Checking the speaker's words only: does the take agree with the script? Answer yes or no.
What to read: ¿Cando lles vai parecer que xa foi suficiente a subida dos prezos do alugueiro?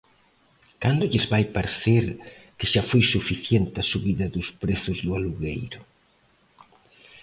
yes